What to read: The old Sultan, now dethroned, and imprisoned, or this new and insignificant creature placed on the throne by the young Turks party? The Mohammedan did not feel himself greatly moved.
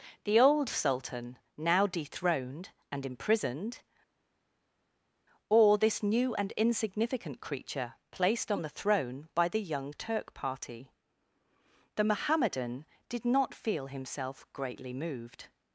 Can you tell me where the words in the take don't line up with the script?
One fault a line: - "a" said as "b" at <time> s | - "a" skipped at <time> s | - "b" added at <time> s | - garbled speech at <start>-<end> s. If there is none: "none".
- "Turks" said as "Turk" at 9.9 s